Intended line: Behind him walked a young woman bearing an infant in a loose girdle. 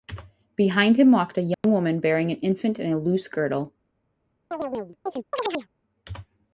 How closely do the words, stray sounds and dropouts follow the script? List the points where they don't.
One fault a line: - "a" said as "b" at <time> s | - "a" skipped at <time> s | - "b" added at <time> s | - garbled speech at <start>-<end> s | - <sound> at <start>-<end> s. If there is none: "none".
- dropout at 1.5-1.6 s
- chirp at 4.5-5.7 s